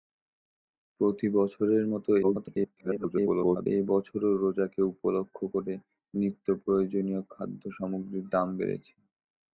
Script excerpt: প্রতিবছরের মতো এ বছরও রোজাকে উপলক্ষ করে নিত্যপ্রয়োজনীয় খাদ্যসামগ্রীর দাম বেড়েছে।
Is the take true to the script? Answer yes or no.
no